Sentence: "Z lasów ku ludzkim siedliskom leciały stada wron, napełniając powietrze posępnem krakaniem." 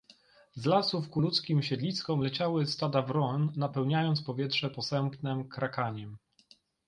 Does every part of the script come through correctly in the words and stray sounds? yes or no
yes